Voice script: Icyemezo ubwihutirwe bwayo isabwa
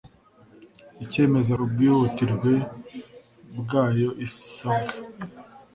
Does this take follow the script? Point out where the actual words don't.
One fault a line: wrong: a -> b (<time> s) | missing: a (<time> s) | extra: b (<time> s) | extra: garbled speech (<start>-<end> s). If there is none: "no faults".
no faults